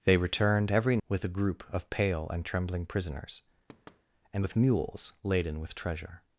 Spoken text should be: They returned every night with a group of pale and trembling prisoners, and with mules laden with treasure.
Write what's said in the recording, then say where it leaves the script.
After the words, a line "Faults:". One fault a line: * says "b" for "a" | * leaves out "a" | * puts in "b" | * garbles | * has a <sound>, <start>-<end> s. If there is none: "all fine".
They returned every with a group of pale and trembling prisoners, and with mules laden with treasure.
Faults:
* leaves out "night"
* has a thud, 3.7-4.0 s